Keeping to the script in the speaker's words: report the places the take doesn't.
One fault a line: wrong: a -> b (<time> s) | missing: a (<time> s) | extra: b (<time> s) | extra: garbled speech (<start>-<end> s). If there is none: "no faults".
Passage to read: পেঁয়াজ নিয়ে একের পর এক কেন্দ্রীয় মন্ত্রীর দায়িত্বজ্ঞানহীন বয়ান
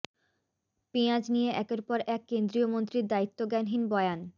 no faults